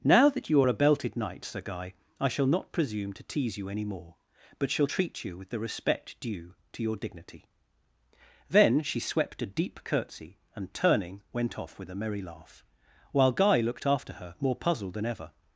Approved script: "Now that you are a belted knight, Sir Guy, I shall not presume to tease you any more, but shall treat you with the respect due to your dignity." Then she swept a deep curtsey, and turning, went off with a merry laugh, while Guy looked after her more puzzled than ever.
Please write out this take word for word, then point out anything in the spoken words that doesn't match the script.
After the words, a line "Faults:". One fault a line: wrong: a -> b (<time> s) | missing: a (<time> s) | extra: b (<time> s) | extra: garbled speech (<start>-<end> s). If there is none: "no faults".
"Now that you are a belted knight, Sir Guy, I shall not presume to tease you any more, but shall treat you with the respect due to your dignity." Then she swept a deep curtsey, and turning, went off with a merry laugh, while Guy looked after her more puzzled than ever.
Faults:
no faults